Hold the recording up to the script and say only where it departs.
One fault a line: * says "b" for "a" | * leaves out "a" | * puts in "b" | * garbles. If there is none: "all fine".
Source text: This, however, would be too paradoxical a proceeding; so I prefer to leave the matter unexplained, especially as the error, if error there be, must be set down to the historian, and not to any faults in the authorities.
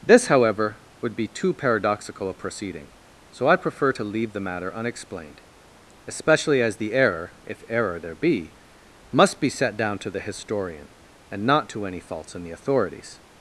all fine